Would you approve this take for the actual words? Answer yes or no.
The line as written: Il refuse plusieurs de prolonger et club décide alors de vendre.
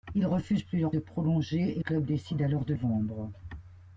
yes